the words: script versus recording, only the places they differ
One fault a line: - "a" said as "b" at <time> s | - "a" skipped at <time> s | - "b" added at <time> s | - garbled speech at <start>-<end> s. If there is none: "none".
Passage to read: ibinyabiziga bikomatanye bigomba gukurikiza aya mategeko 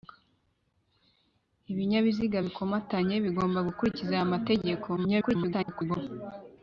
- garbled speech at 5.0-6.0 s